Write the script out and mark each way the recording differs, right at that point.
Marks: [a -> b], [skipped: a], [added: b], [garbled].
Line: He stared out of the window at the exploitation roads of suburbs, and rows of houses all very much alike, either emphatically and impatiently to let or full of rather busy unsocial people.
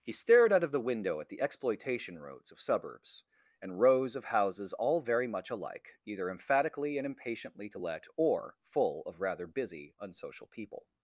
He stared out of the window at the exploitation roads of suburbs, and rows of houses all very much alike, either emphatically and impatiently to let or full of rather busy unsocial people.